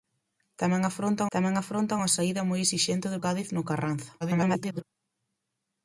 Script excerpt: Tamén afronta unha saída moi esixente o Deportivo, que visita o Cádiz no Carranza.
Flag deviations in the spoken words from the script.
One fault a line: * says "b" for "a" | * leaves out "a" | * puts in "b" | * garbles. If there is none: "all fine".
* puts in "tamén afronta"
* leaves out "Deportivo que visita"
* garbles